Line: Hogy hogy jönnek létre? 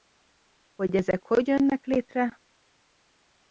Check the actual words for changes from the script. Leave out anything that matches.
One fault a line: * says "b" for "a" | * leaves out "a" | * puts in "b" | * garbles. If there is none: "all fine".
* puts in "ezek"